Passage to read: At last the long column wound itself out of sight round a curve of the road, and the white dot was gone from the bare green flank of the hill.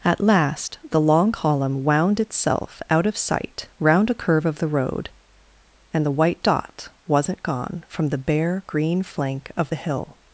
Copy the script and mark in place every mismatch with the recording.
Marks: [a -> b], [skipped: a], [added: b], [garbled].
At last the long column wound itself out of sight round a curve of the road, and the white dot [was -> wasn't] gone from the bare green flank of the hill.